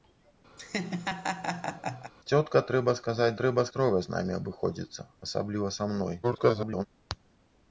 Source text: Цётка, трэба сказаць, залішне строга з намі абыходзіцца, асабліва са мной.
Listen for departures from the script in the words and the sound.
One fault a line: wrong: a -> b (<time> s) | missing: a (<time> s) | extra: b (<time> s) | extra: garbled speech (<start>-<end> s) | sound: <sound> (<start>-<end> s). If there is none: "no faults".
sound: laugh (0.6-2.1 s)
wrong: залішне -> трэба (3.4 s)
extra: garbled speech (6.2-6.9 s)